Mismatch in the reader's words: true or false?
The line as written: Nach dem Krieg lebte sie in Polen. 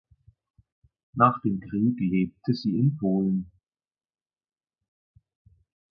false